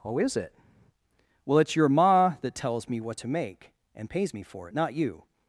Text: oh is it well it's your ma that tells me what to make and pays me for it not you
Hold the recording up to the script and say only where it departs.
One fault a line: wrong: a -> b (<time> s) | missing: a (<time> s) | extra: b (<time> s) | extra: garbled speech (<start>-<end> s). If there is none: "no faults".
no faults